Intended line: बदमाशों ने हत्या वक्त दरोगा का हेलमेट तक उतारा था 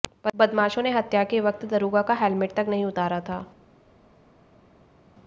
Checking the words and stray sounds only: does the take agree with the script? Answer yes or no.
no